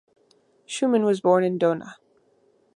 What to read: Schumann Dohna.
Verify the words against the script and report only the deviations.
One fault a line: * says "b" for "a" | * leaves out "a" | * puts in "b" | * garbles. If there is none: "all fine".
* puts in "was born in"